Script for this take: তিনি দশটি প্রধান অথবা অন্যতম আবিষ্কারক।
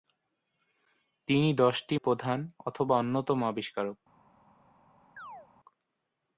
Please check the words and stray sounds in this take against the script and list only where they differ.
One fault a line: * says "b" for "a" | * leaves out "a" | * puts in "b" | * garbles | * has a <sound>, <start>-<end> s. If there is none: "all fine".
* has a chirp, 5.2-5.5 s